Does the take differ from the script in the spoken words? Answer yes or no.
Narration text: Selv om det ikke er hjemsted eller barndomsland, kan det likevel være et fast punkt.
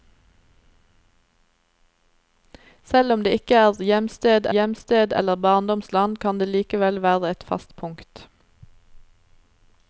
yes